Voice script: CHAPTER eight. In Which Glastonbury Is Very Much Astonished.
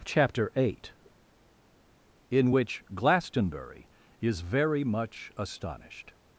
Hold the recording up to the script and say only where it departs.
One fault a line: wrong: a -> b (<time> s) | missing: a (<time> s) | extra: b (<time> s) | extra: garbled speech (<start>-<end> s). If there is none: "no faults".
no faults